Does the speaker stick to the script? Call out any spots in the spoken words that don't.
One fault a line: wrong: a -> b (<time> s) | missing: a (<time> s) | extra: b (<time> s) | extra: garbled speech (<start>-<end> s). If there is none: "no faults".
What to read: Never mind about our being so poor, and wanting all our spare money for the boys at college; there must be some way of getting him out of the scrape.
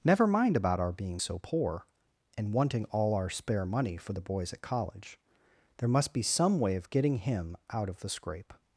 no faults